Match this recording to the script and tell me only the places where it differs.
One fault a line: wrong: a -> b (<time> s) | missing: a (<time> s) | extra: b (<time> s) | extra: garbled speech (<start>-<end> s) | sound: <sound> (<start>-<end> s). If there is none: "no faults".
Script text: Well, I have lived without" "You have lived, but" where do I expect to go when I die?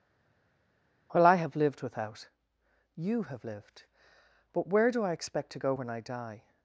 no faults